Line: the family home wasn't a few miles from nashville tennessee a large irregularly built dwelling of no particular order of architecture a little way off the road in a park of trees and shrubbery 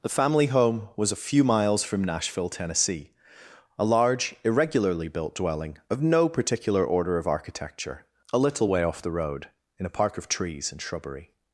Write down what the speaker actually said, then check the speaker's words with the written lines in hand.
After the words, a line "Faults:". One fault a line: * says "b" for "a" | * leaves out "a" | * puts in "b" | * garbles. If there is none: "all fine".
the family home was a few miles from nashville tennessee a large irregularly built dwelling of no particular order of architecture a little way off the road in a park of trees and shrubbery
Faults:
* says "was" for "wasn't"